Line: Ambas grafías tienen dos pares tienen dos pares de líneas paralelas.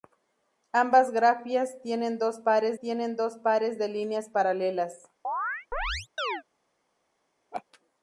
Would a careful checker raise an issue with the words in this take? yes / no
no